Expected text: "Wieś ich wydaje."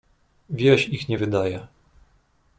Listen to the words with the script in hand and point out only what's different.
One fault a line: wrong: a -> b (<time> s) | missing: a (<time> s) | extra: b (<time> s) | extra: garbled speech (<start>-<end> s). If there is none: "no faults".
extra: nie (1.1 s)